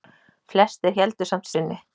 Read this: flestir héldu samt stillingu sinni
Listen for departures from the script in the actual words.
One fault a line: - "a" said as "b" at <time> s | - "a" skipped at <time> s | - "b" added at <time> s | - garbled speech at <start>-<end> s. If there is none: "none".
- "stillingu" skipped at 1.5 s